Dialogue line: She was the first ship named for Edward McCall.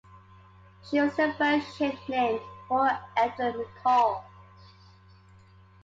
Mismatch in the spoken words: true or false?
false